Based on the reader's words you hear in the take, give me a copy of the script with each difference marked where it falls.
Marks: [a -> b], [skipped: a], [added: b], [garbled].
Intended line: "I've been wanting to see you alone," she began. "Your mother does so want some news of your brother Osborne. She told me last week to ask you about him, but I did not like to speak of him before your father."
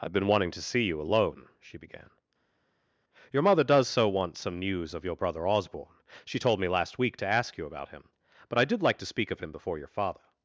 "I've been wanting to see you alone," she began. "Your mother does so want some news of your brother Osborne. She told me last week to ask you about him, but I did [skipped: not] like to speak of him before your father."